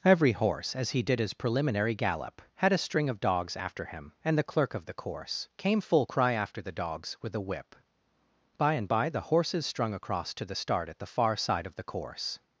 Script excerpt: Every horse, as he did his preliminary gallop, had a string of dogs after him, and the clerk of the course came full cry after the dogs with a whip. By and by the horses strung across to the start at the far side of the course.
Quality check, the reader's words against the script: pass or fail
pass